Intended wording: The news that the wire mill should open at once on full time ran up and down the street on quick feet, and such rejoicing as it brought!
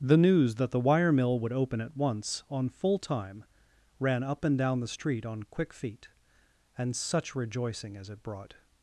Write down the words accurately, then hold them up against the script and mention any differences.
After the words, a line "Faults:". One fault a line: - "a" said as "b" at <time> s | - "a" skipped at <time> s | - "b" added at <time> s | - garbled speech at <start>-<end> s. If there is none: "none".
The news that the wire mill would open at once on full time ran up and down the street on quick feet, and such rejoicing as it brought!
Faults:
- "should" said as "would" at 1.4 s